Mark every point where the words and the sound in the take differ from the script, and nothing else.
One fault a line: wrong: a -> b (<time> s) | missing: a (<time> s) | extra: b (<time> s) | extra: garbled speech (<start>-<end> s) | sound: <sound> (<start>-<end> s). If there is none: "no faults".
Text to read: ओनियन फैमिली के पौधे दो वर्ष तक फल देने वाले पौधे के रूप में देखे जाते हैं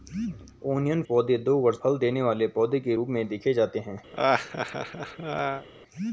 missing: फैमिली के (1.0 s)
missing: तक (1.8 s)
sound: laugh (4.1-5.7 s)